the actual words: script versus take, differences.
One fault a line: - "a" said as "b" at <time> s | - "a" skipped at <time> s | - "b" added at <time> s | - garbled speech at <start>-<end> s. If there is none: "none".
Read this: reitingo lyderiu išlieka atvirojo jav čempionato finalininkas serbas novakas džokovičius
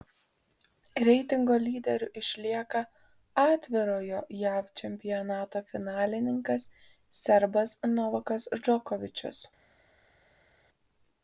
none